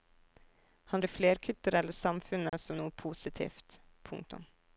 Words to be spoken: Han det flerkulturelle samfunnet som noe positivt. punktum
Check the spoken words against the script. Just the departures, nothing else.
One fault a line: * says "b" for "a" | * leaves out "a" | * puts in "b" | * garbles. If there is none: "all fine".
all fine